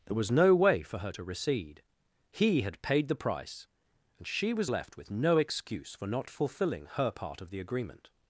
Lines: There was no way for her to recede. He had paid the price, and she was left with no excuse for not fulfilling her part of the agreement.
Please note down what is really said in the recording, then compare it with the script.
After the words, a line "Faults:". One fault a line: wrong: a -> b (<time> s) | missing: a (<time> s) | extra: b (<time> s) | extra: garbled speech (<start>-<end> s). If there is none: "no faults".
There was no way for her to recede. He had paid the price, and she was left with no excuse for not fulfilling her part of the agreement.
Faults:
no faults